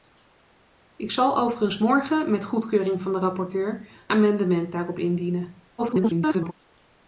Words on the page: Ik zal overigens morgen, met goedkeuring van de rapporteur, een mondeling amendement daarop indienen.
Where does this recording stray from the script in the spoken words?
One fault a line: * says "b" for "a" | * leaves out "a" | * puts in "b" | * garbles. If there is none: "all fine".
* leaves out "een mondeling"
* garbles